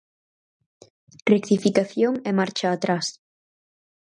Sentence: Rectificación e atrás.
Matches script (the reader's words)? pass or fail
fail